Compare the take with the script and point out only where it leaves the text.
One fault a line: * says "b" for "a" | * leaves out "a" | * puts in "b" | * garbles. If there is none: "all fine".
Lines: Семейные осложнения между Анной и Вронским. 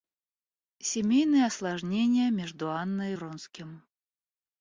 all fine